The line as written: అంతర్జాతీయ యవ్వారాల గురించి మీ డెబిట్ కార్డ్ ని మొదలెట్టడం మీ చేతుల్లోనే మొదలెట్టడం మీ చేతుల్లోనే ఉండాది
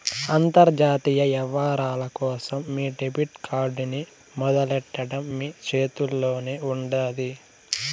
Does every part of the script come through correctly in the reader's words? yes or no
no